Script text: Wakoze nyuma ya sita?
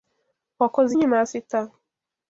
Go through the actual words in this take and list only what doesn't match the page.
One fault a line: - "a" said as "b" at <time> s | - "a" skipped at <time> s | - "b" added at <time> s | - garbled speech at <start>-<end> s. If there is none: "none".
none